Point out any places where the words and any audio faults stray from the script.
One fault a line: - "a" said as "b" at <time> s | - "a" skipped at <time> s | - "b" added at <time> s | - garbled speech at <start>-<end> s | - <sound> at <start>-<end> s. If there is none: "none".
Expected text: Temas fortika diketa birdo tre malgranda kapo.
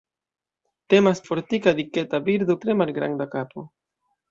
none